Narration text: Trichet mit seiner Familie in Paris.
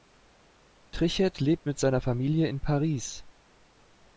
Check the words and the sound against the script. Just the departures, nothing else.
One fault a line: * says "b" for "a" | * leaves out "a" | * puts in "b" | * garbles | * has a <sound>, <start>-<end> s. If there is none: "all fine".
* puts in "lebt"